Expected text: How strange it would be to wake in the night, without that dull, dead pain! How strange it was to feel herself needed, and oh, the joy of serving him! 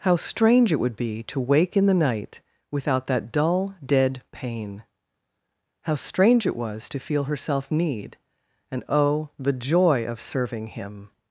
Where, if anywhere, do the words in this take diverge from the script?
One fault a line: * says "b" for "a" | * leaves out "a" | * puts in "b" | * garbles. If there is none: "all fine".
* says "need" for "needed"